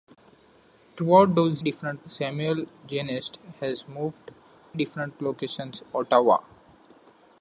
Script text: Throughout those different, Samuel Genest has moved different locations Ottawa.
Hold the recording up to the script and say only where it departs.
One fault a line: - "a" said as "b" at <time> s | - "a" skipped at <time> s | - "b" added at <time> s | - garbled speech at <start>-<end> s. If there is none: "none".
none